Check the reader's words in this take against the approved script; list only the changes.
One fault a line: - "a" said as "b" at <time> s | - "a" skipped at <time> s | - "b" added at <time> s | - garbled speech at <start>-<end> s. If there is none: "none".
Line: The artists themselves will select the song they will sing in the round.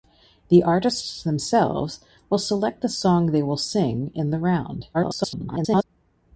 - garbled speech at 4.9-5.8 s